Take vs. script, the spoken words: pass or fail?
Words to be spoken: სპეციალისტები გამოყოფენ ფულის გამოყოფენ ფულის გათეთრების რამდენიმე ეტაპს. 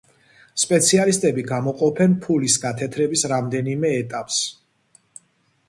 fail